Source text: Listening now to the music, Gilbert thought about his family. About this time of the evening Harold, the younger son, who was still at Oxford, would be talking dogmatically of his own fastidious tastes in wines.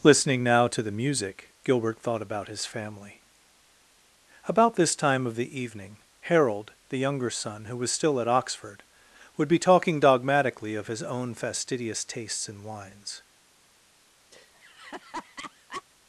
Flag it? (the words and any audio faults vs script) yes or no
yes